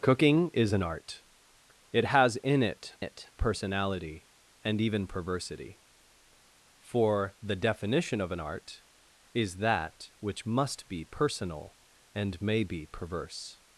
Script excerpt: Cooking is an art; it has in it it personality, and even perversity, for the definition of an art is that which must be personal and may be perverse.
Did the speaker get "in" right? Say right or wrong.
right